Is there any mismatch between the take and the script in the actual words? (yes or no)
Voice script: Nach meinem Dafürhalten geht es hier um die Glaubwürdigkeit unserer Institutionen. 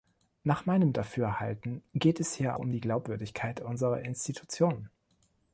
no